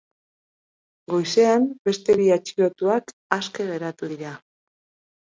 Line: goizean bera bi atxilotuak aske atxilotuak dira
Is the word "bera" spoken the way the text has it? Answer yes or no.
no